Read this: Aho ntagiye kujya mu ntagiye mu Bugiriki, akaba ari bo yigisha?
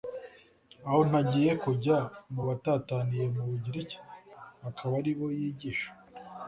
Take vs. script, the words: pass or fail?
fail